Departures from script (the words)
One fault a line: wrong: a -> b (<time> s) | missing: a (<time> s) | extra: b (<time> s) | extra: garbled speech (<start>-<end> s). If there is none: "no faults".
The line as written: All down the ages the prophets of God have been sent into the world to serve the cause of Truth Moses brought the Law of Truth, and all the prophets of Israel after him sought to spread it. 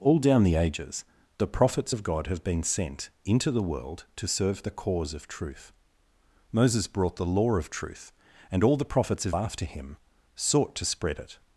missing: Israel (9.4 s)